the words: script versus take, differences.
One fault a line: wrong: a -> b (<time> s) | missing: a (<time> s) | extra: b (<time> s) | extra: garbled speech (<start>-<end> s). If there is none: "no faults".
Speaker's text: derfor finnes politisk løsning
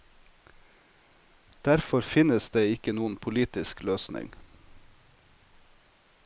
extra: det ikke noen (2.5 s)